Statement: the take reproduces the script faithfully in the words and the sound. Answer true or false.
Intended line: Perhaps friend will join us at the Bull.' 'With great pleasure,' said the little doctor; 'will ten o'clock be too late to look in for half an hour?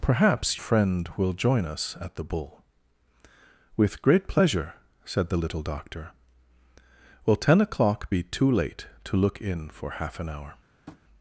false